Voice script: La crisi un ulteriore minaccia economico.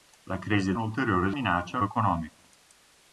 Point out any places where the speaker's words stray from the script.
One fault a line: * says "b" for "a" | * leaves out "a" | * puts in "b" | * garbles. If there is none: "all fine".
all fine